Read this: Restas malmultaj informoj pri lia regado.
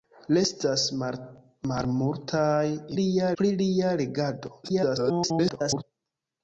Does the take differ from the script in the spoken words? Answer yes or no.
yes